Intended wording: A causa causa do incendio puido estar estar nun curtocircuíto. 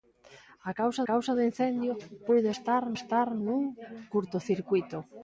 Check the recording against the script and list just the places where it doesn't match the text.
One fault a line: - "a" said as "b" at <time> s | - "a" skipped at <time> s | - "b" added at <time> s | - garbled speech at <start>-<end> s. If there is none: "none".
none